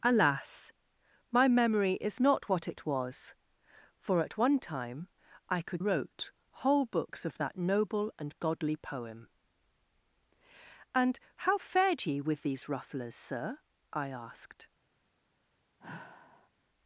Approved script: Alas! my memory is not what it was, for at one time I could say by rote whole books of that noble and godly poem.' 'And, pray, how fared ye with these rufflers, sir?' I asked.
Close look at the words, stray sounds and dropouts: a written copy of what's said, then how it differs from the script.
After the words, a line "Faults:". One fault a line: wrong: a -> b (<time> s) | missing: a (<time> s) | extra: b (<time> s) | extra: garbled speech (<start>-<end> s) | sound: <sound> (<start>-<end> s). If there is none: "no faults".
Alas! my memory is not what it was, for at one time I could rote whole books of that noble and godly poem.' 'And, how fared ye with these rufflers, sir?' I asked.
Faults:
missing: say by (5.8 s)
missing: pray (11.2 s)
sound: sigh (15.8-16.5 s)